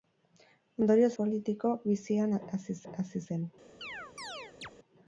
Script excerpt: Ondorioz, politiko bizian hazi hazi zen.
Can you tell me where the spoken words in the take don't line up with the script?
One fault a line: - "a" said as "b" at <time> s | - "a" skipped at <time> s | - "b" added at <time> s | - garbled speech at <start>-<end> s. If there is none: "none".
none